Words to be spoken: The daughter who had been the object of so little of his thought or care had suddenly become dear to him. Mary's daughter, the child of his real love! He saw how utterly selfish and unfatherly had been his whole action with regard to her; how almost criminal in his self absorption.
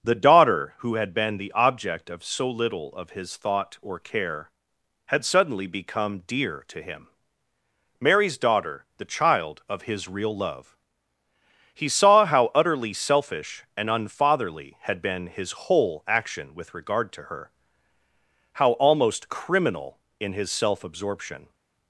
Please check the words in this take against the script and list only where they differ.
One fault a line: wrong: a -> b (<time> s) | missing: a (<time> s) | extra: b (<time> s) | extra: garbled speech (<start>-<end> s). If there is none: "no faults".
no faults